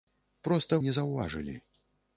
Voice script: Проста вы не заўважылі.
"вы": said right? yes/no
no